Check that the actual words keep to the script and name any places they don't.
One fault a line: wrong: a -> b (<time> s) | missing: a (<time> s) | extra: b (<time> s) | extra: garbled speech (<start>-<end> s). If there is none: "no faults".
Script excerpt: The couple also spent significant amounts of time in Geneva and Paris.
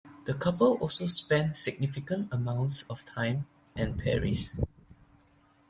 missing: in Geneva (3.5 s)